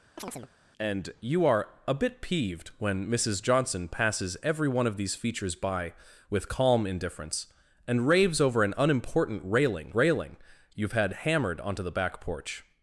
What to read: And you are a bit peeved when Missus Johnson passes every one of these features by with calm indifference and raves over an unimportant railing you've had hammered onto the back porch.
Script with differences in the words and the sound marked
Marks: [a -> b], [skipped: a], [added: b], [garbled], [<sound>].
[chirp] And you are a bit peeved when Missus Johnson passes every one of these features by with calm indifference and raves over an unimportant railing [added: railing] you've had hammered onto the back porch.